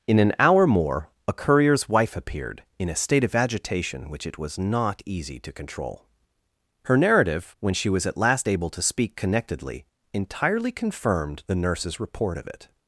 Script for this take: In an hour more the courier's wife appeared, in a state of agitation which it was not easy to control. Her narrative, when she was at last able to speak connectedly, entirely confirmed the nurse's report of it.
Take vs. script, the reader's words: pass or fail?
fail